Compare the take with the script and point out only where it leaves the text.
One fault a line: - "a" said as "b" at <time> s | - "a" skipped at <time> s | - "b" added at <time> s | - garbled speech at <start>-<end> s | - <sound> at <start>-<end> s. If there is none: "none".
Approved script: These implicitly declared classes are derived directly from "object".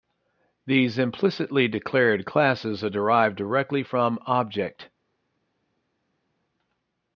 none